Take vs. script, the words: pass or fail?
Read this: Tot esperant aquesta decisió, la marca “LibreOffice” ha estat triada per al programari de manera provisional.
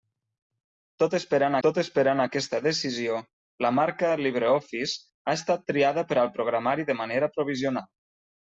fail